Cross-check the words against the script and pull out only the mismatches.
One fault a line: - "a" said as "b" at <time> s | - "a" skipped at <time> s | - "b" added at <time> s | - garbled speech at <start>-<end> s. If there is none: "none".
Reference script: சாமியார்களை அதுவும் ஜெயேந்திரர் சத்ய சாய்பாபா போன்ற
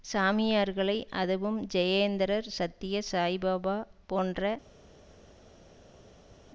none